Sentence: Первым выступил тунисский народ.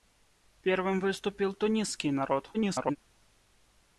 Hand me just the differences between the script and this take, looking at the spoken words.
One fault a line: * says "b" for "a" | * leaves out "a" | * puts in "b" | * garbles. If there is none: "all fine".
* garbles